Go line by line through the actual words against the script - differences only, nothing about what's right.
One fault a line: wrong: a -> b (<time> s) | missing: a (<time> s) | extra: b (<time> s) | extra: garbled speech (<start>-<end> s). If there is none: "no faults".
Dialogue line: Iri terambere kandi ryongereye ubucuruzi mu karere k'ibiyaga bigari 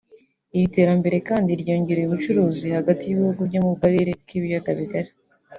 extra: hagati y'ibihugu byo (2.8 s)